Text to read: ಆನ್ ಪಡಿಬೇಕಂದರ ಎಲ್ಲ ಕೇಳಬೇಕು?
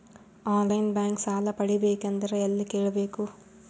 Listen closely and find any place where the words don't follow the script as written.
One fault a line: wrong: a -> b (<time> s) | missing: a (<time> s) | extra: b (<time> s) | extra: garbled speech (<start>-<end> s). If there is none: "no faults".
extra: ಲೈನ್ ಬ್ಯಾಂಕ್ ಸಾಲ (0.7 s)